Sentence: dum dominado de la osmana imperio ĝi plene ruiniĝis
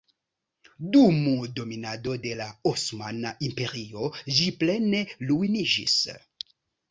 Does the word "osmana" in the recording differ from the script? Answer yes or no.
no